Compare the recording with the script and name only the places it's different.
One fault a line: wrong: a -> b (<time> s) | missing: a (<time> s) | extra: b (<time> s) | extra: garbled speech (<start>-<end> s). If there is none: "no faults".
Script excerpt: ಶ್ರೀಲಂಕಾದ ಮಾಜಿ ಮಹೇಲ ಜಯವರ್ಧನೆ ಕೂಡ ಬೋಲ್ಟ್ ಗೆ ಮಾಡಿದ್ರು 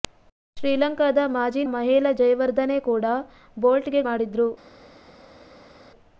no faults